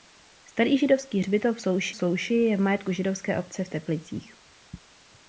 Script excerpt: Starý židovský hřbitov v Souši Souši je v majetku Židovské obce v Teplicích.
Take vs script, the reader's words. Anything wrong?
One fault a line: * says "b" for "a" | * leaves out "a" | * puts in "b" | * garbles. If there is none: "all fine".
all fine